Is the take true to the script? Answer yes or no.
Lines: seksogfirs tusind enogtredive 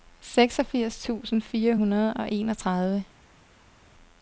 no